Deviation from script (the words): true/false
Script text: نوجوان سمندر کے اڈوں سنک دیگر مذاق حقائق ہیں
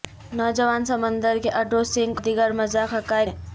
false